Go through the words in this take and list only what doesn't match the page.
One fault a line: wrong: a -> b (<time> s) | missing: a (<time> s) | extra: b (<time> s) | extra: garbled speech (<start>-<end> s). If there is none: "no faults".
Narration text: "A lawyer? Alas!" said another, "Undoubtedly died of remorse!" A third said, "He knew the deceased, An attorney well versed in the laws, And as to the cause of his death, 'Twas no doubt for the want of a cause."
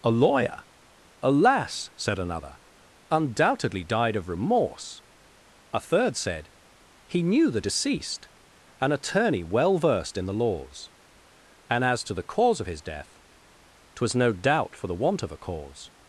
no faults